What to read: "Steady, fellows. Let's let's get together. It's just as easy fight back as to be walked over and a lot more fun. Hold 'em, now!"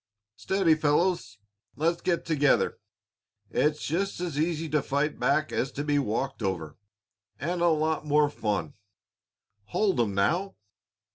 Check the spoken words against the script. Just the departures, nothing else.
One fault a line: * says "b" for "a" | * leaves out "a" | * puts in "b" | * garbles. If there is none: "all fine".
* leaves out "let's"
* puts in "to"